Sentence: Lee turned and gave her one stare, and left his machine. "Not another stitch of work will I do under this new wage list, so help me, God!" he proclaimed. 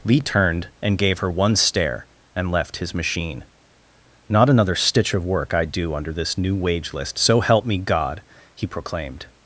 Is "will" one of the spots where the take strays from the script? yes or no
yes